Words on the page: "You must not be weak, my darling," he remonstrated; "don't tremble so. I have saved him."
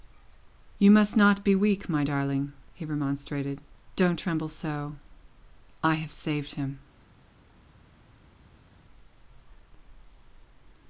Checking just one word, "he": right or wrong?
right